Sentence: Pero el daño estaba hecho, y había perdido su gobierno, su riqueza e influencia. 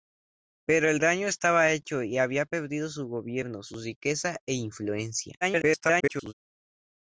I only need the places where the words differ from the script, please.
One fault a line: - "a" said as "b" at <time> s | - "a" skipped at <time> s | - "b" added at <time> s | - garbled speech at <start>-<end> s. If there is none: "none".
- garbled speech at 5.4-6.3 s